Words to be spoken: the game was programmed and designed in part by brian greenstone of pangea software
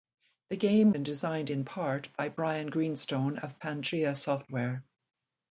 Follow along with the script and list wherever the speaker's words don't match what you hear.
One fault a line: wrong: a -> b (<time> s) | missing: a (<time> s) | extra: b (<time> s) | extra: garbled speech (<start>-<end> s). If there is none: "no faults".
missing: was programmed (0.9 s)